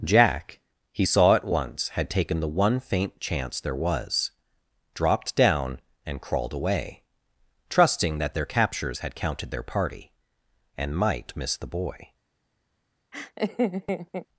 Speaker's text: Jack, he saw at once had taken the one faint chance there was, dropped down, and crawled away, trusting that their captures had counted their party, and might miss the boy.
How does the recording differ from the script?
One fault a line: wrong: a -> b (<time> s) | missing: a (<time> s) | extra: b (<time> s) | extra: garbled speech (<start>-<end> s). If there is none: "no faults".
no faults